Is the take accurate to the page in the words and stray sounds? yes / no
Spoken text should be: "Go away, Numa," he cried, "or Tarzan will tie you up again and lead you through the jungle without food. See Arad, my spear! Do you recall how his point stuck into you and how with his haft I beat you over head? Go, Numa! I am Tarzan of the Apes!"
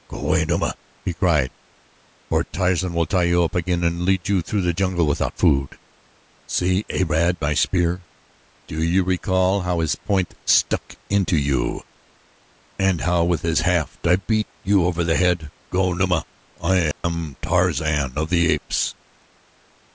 no